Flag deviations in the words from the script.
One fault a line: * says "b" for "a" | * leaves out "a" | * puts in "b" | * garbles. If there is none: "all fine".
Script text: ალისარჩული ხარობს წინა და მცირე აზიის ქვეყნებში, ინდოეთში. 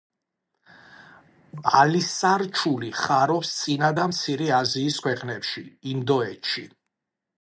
all fine